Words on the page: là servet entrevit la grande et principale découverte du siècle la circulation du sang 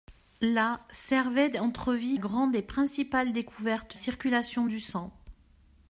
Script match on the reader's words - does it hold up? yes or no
no